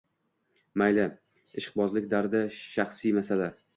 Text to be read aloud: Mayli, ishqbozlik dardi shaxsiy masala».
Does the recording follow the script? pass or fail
pass